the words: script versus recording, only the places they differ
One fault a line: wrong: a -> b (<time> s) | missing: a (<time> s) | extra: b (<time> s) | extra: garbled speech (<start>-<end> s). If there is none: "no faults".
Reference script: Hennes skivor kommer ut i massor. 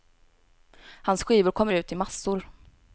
wrong: Hennes -> Hans (1.0 s)